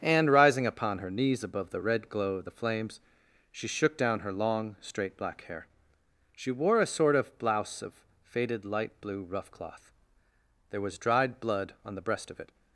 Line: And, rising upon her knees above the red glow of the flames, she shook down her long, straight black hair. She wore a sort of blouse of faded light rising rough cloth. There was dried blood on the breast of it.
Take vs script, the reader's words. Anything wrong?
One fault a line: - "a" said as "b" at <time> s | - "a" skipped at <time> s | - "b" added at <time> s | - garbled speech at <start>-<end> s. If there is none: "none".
- "rising" said as "blue" at 9.0 s